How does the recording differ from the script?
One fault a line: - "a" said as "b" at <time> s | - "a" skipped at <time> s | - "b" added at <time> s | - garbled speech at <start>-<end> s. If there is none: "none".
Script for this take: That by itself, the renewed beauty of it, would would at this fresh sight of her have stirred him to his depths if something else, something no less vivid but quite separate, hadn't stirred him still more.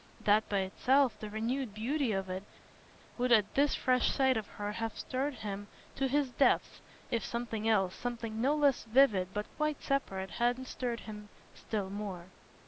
- "would" skipped at 3.3 s